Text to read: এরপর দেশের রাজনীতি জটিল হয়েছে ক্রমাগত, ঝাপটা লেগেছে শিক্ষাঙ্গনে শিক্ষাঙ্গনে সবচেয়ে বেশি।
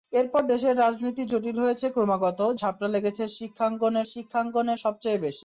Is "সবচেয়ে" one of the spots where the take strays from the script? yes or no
no